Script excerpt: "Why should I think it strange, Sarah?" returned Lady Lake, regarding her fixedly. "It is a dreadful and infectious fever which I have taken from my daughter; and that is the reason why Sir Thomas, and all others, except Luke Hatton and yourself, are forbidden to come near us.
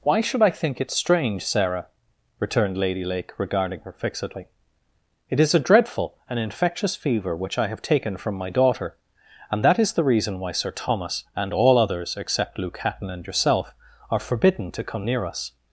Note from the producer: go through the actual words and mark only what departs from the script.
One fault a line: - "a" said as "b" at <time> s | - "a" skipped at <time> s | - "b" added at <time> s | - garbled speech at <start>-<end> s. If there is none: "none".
none